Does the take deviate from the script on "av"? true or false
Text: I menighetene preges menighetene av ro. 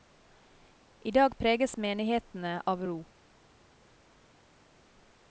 false